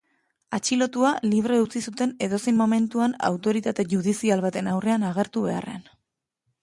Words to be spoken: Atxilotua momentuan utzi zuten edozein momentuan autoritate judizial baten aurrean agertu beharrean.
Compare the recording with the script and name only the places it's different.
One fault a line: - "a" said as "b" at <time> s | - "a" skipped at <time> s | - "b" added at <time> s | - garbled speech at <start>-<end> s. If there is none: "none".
- "momentuan" said as "libre" at 1.3 s